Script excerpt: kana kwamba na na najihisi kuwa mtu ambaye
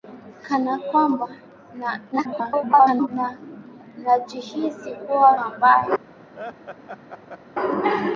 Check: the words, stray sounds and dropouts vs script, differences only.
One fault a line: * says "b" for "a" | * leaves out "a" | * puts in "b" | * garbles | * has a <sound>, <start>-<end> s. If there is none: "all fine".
* garbles
* leaves out "mtu"
* has a laugh, 6.3-7.4 s